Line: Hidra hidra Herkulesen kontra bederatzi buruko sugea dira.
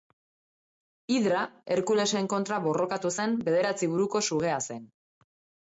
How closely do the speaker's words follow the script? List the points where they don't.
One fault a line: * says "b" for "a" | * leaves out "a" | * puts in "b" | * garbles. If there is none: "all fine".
* leaves out "hidra"
* puts in "borrokatu zen"
* says "zen" for "dira"